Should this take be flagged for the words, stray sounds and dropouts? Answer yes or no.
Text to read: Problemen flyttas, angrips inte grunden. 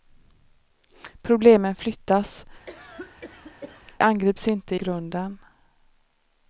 yes